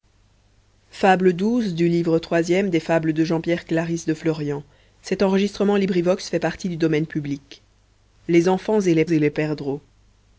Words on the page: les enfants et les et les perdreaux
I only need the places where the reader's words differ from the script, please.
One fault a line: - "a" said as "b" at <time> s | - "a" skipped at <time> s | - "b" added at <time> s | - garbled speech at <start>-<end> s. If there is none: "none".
none